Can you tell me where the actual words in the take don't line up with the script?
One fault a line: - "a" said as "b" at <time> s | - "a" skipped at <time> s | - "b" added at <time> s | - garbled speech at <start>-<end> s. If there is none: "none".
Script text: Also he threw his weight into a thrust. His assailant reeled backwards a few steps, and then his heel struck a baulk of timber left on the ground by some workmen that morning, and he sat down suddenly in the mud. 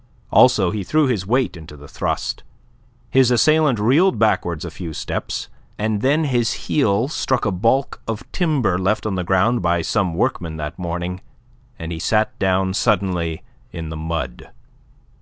- "a" said as "the" at 1.8 s